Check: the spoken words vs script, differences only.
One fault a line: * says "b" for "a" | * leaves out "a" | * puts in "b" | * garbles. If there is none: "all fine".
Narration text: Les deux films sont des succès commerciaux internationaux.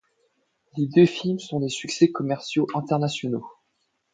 all fine